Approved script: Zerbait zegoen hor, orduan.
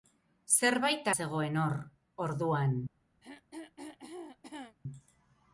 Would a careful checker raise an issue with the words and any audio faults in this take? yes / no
yes